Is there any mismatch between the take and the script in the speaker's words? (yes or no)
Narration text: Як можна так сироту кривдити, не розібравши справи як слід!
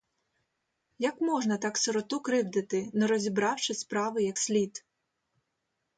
no